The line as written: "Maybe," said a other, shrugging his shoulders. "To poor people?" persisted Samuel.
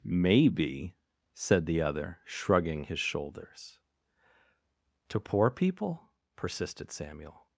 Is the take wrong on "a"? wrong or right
wrong